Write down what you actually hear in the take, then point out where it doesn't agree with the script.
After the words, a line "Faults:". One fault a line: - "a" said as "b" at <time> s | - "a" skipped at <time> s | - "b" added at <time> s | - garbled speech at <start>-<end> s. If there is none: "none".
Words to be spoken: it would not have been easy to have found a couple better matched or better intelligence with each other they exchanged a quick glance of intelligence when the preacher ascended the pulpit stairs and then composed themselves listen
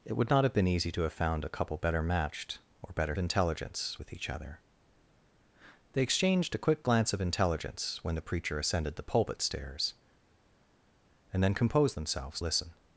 it would not have been easy to have found a couple better matched or better intelligence with each other they exchanged a quick glance of intelligence when the preacher ascended the pulpit stairs and then composed themselves listen
Faults:
none